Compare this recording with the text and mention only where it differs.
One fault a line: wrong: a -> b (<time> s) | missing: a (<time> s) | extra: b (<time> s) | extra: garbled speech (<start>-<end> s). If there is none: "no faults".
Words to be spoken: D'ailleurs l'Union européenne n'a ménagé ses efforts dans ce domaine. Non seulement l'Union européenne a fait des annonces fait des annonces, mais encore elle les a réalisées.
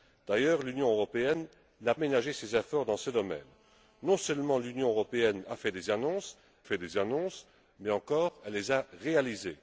no faults